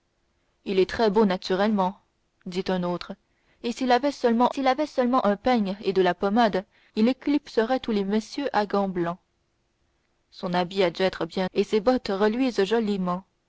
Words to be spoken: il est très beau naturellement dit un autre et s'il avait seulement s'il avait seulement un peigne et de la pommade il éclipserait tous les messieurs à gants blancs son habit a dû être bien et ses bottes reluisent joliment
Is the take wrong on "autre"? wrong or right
right